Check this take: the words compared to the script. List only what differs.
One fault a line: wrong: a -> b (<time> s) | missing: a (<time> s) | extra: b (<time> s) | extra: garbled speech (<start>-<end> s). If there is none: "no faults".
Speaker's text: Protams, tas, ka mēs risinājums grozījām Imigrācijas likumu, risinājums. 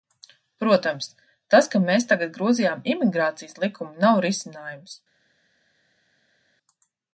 wrong: risinājums -> tagad (2.1 s)
extra: nav (4.1 s)